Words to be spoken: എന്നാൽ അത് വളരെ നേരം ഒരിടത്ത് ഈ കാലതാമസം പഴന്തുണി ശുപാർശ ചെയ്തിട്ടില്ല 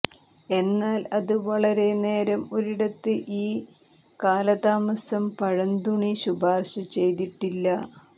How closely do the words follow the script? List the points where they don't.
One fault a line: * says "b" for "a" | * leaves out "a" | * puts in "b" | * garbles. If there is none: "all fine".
all fine